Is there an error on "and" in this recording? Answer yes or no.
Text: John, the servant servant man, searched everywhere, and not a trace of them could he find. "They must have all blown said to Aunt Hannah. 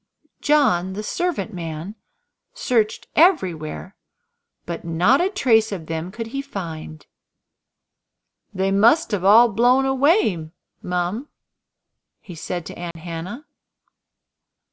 yes